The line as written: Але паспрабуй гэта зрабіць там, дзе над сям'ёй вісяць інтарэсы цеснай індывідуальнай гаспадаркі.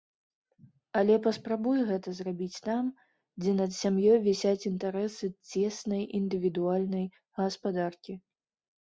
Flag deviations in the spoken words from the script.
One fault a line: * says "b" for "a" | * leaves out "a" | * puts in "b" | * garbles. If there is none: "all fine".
all fine